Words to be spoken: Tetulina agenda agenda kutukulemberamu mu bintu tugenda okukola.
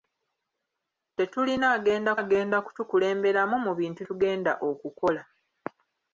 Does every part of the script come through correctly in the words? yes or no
yes